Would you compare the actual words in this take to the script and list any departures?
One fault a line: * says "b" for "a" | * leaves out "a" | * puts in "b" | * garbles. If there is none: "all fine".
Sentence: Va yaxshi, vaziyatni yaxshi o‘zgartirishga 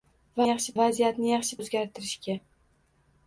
all fine